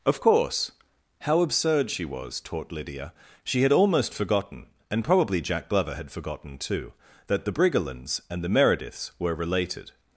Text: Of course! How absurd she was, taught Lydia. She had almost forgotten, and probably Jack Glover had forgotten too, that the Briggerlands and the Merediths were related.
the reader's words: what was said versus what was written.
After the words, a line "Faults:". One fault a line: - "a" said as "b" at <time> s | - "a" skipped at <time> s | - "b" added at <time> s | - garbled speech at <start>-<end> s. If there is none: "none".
Of course! How absurd she was, taught Lydia. She had almost forgotten, and probably Jack Glover had forgotten too, that the Briggerlands and the Merediths were related.
Faults:
none